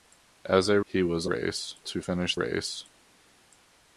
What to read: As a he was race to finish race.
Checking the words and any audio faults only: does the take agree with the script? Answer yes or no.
yes